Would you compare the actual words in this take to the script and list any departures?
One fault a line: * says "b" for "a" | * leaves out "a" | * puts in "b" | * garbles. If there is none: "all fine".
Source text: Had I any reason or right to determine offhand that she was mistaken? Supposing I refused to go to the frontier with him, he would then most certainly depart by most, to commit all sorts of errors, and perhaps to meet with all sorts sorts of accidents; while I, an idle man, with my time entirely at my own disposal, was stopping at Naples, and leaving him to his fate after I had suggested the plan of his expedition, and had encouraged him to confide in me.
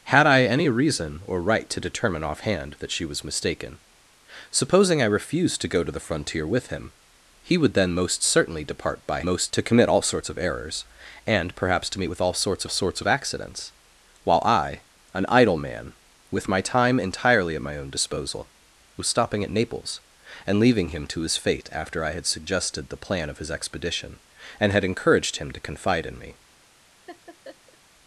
all fine